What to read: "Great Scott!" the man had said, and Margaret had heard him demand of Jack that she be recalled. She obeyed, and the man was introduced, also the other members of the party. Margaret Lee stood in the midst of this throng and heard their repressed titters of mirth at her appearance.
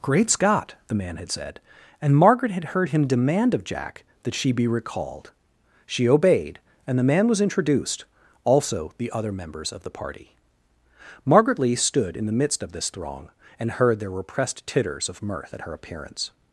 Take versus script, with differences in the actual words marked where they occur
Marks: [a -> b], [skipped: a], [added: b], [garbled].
"Great Scott!" the man had said, and Margaret had heard him demand of Jack that she be recalled. She obeyed, and the man was introduced, also the other members of the party. Margaret Lee stood in the midst of this throng and heard their repressed titters of mirth at her appearance.